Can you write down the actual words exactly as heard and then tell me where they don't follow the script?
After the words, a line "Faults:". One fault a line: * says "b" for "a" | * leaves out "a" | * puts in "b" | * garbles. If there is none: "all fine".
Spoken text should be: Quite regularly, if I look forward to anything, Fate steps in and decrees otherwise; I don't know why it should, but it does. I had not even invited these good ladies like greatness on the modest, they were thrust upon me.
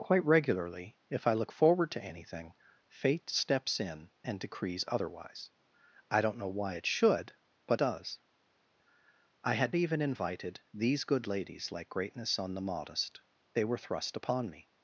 Quite regularly, if I look forward to anything, Fate steps in and decrees otherwise; I don't know why it should, but does. I had even invited these good ladies like greatness on the modest, they were thrust upon me.
Faults:
* leaves out "it"
* leaves out "not"